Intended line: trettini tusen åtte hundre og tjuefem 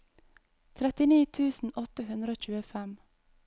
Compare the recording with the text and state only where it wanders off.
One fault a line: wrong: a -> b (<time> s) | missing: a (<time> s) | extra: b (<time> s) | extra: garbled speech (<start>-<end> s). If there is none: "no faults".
no faults